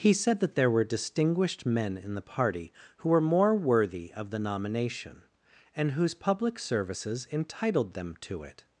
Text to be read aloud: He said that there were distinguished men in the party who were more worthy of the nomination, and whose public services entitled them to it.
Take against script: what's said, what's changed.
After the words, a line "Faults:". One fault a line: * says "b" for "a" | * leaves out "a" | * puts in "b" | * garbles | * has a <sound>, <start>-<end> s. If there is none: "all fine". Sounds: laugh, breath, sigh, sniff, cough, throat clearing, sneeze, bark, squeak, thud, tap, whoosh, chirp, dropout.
He said that there were distinguished men in the party who were more worthy of the nomination, and whose public services entitled them to it.
Faults:
all fine